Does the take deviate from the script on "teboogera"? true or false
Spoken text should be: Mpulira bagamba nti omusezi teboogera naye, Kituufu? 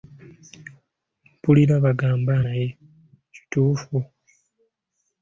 true